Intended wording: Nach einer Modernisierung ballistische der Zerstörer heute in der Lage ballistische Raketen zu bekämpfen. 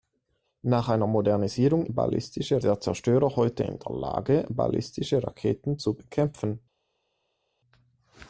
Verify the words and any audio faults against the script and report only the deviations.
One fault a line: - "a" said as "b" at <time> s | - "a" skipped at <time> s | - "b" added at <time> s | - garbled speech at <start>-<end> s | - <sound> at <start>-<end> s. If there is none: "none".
none